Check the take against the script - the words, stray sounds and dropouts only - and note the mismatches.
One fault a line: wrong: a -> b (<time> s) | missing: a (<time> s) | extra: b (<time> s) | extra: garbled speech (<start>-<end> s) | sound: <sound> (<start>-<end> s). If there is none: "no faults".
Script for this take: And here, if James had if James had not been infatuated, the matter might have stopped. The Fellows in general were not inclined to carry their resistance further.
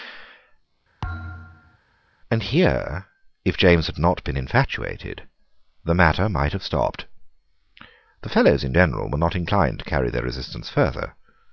sound: thud (1.0-1.8 s)
missing: if James had (4.0 s)